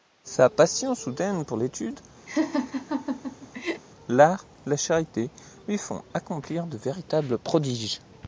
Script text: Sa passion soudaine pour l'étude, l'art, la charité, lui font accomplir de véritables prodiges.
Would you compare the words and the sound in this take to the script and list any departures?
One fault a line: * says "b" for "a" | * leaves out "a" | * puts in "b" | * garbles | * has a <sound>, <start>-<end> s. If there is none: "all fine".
* has a laugh, 2.3-3.8 s